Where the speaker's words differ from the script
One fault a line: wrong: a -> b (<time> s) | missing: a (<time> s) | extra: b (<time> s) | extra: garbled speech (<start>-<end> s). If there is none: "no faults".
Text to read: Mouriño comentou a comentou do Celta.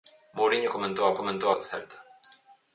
no faults